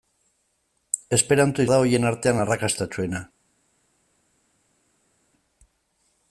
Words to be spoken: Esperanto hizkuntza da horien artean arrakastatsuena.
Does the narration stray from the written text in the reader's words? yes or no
yes